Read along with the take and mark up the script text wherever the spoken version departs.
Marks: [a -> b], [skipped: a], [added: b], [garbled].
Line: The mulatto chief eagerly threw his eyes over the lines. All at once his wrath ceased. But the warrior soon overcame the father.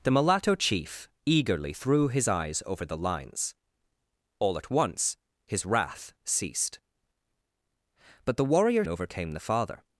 The mulatto chief eagerly threw his eyes over the lines. All at once his wrath ceased. But the warrior [skipped: soon] overcame the father.